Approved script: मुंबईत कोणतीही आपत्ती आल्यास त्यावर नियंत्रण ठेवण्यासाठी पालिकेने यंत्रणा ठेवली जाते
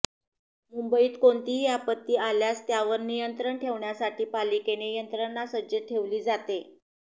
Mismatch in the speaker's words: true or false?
true